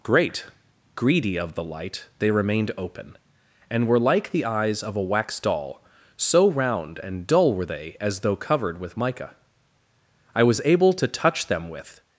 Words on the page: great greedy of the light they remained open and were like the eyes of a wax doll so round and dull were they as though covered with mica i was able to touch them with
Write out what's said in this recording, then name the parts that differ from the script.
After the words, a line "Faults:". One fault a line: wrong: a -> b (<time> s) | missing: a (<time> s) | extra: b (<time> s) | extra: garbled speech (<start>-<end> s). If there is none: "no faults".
great greedy of the light they remained open and were like the eyes of a wax doll so round and dull were they as though covered with mica i was able to touch them with
Faults:
no faults